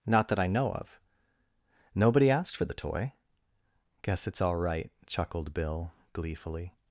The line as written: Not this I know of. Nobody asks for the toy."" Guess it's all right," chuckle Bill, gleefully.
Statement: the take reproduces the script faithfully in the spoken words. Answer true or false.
false